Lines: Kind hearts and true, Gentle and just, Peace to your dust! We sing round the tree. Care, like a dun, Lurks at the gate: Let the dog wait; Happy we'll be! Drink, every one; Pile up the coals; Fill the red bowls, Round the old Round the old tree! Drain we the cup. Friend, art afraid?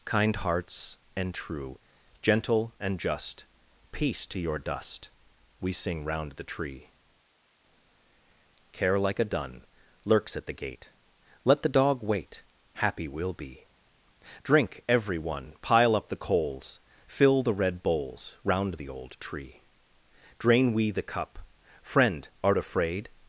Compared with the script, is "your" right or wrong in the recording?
right